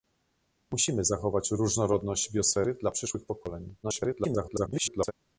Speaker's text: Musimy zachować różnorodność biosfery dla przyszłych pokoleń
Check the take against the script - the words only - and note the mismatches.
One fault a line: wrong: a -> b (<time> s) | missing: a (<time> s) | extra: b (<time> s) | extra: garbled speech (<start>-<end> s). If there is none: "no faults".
extra: garbled speech (3.8-5.1 s)